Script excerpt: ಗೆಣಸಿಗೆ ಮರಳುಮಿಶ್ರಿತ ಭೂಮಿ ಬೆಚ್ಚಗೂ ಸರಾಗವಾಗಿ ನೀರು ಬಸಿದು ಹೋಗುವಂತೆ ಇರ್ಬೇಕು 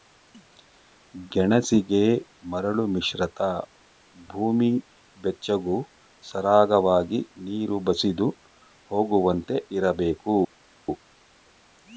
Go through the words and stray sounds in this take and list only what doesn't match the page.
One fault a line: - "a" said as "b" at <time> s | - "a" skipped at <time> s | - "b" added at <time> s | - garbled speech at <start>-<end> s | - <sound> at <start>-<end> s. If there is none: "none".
none